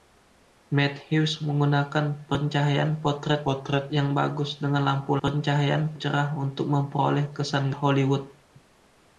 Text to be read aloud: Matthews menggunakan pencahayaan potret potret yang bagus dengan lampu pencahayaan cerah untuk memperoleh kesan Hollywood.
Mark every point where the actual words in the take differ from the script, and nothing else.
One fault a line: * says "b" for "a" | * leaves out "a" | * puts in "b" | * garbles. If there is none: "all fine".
all fine